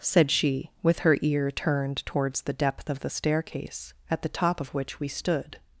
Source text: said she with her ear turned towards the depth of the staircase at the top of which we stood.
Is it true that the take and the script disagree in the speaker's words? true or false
false